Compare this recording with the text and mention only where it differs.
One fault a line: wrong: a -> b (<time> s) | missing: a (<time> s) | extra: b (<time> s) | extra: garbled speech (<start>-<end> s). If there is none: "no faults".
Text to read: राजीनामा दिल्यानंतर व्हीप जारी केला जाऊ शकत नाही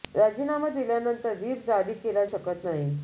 missing: जाऊ (2.2 s)